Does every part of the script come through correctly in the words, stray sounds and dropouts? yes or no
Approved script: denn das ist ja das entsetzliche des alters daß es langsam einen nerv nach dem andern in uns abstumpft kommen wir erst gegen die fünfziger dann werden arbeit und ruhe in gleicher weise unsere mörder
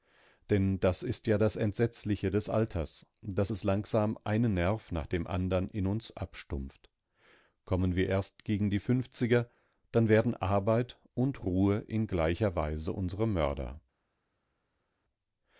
yes